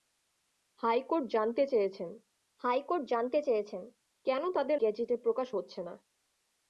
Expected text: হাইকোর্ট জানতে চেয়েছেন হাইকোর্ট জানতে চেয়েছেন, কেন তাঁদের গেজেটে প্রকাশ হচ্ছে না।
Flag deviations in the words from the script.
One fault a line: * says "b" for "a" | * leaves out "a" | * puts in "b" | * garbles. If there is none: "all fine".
all fine